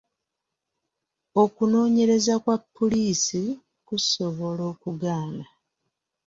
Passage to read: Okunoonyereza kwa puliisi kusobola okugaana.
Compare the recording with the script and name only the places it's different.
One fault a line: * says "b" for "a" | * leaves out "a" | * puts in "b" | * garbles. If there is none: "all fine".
all fine